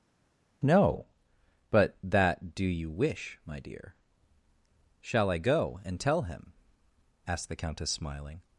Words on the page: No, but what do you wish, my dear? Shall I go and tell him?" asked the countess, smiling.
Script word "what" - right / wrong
wrong